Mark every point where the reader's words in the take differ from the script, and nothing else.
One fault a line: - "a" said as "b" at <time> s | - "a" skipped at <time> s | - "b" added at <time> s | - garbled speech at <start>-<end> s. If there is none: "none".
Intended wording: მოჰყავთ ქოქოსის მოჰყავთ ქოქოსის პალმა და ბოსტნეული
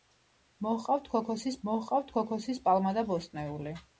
none